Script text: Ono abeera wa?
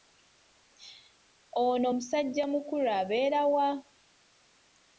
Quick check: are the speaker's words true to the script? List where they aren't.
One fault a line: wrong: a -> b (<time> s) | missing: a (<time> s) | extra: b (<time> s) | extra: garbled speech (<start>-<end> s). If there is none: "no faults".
extra: musajjamukulu (2.0 s)